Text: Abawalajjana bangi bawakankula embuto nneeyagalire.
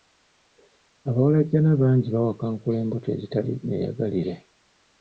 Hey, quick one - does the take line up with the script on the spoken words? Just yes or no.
no